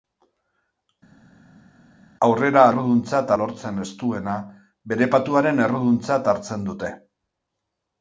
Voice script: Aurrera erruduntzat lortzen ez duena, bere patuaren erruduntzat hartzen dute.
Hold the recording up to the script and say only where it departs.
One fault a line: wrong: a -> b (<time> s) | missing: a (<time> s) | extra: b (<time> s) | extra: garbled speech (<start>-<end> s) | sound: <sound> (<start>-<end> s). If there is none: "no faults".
no faults